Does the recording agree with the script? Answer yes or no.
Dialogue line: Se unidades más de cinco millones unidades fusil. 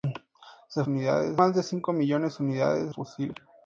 yes